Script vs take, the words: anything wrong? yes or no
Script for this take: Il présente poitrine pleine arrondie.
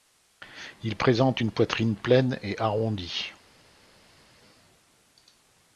yes